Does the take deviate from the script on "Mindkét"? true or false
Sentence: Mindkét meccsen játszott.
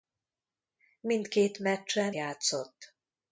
false